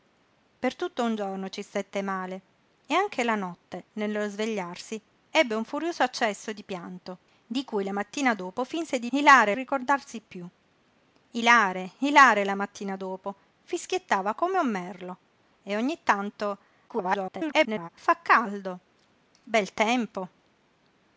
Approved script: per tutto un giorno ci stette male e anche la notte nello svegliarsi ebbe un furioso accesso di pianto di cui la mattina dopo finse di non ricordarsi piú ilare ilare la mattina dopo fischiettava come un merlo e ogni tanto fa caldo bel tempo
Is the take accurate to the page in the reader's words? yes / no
no